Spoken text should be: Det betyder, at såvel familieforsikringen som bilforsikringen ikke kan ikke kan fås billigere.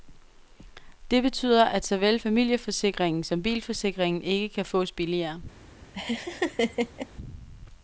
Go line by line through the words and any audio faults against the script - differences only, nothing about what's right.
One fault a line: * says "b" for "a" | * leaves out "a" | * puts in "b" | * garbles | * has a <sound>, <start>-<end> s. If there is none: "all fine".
* leaves out "ikke kan"
* has a laugh, 5.9-7.1 s